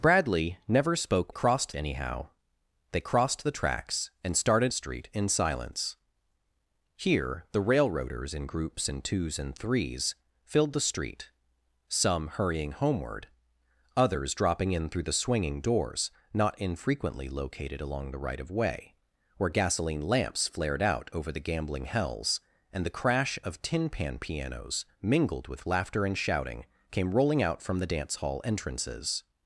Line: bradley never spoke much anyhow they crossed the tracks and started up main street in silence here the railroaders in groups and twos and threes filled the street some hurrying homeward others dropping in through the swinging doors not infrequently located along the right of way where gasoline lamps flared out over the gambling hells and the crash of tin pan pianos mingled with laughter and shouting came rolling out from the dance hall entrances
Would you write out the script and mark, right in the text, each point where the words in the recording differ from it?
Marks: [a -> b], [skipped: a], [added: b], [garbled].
bradley never spoke [much -> crossed] anyhow they crossed the tracks and started [skipped: up main] street in silence here the railroaders in groups and twos and threes filled the street some hurrying homeward others dropping in through the swinging doors not infrequently located along the right of way where gasoline lamps flared out over the gambling hells and the crash of tin pan pianos mingled with laughter and shouting came rolling out from the dance hall entrances